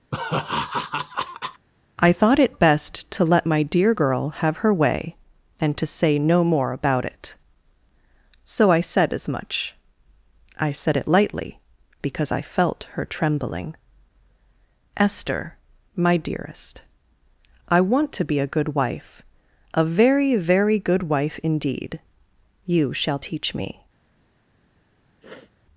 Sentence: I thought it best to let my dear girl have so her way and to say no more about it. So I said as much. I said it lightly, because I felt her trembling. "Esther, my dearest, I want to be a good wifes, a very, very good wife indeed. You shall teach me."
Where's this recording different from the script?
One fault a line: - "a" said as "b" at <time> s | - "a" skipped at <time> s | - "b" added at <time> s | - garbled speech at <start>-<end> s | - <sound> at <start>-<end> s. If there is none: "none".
- laugh at 0.1-1.7 s
- "so" skipped at 4.6 s
- "wifes" said as "wife" at 18.7 s
- sniff at 25.2-25.5 s